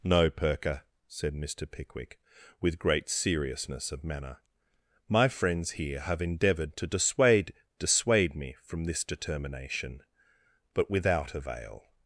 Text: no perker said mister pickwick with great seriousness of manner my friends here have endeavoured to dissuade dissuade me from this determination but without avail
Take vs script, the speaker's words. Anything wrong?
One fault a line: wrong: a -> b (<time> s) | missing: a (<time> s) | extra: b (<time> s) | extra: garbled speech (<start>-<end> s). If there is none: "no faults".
no faults